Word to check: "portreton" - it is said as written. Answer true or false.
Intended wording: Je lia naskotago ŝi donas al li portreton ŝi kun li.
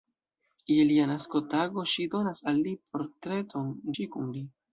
true